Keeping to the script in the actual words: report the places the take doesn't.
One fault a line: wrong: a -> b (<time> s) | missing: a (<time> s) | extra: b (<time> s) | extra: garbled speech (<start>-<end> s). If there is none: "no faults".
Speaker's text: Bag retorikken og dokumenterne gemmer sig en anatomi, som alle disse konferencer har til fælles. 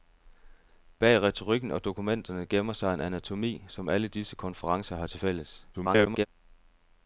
extra: garbled speech (5.7-6.3 s)